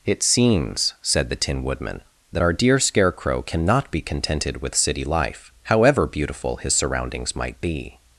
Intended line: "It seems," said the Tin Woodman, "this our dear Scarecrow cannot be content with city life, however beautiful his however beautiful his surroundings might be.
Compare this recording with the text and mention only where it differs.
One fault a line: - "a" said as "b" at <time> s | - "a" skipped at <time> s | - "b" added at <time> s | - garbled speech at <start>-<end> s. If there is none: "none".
- "this" said as "that" at 2.3 s
- "content" said as "contented" at 4.0 s
- "however beautiful his" skipped at 6.8 s